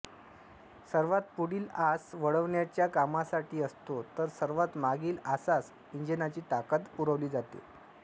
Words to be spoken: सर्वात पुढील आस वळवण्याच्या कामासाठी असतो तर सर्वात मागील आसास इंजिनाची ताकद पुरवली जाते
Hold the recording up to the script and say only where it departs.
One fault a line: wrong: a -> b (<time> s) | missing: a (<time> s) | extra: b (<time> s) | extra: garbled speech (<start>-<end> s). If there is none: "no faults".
no faults